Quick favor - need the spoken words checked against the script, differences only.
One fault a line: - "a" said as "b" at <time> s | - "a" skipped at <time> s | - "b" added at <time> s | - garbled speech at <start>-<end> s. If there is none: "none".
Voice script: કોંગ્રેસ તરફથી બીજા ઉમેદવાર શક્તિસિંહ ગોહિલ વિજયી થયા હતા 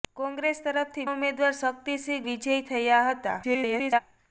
- "બીજા" skipped at 1.1 s
- "ગોહિલ" skipped at 2.2 s
- garbled speech at 3.4-4.0 s